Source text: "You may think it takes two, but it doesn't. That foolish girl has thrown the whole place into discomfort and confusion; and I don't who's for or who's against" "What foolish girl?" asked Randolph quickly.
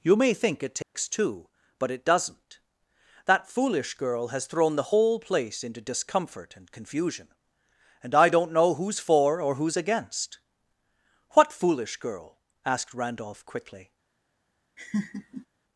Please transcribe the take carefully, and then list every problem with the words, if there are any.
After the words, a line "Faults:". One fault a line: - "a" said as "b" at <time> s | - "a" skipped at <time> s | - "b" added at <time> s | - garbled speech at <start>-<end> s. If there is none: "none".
"You may think it takes two, but it doesn't. That foolish girl has thrown the whole place into discomfort and confusion; and I don't know who's for or who's against" "What foolish girl?" asked Randolph quickly.
Faults:
- "know" added at 8.5 s